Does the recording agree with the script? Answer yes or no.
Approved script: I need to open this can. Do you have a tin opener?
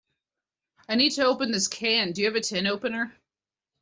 yes